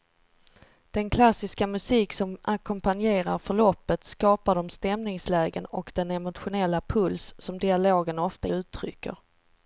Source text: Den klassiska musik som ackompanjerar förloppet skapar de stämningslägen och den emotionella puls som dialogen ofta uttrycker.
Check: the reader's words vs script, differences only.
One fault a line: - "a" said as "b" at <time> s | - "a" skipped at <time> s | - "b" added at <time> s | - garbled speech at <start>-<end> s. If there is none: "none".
none